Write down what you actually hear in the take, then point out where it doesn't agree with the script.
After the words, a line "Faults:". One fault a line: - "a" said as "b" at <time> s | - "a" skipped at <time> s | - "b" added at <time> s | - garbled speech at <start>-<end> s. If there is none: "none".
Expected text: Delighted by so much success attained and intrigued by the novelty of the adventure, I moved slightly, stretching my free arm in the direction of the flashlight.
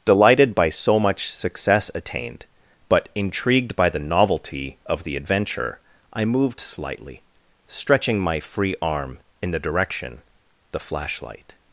Delighted by so much success attained but intrigued by the novelty of the adventure, I moved slightly, stretching my free arm in the direction the flashlight.
Faults:
- "and" said as "but" at 2.9 s
- "of" skipped at 10.2 s